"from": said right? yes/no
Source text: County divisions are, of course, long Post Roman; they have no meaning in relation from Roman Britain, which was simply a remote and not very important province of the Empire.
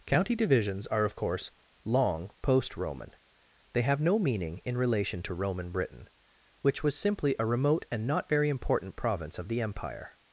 no